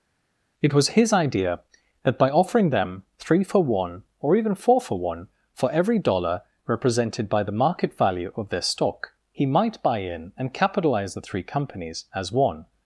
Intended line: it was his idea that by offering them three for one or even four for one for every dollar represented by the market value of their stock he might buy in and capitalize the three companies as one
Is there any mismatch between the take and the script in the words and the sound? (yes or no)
no